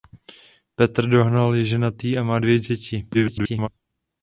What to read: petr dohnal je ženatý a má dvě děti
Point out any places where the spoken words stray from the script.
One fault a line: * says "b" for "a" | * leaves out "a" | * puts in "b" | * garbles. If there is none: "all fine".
* garbles